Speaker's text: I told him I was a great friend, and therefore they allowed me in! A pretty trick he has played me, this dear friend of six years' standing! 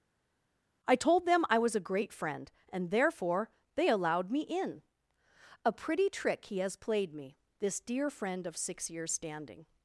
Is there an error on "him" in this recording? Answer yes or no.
yes